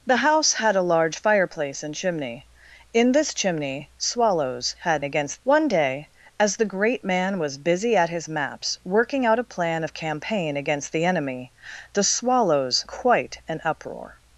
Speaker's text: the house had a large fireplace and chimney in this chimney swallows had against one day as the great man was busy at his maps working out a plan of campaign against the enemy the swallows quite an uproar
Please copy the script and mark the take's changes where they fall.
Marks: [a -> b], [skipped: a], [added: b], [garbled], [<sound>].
the house had a large fireplace and chimney in this chimney swallows had against one day as the great man was busy at his maps working out a plan of campaign against the enemy the swallows quite an uproar